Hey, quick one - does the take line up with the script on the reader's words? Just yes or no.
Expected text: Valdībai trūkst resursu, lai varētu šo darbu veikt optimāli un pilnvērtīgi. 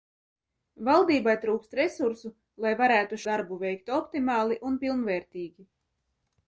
no